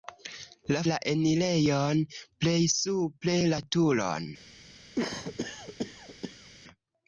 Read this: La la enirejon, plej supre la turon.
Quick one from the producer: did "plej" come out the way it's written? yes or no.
yes